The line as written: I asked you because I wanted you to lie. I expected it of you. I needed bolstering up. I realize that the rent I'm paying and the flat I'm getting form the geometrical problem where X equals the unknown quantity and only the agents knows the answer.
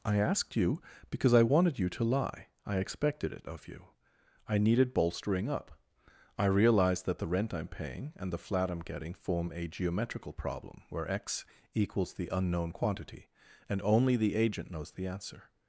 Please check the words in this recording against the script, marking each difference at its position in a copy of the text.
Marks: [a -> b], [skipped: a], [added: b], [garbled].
I asked you because I wanted you to lie. I expected it of you. I needed bolstering up. I realize that the rent I'm paying and the flat I'm getting form [the -> a] geometrical problem where X equals the unknown quantity and only the [agents -> agent] knows the answer.